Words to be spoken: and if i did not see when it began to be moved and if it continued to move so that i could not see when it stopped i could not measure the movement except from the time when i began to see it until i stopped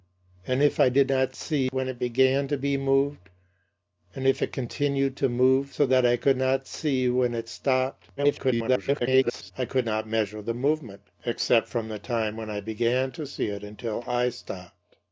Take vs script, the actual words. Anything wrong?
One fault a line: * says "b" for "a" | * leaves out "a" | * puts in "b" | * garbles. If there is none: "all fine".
* garbles